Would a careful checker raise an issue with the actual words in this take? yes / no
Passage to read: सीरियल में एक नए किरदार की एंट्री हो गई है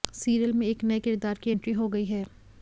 no